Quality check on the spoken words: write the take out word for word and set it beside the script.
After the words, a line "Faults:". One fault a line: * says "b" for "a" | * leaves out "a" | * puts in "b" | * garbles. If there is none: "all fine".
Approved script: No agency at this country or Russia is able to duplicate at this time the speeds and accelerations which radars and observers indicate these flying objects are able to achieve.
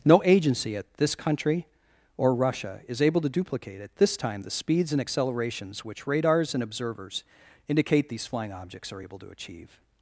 No agency at this country or Russia is able to duplicate at this time the speeds and accelerations which radars and observers indicate these flying objects are able to achieve.
Faults:
all fine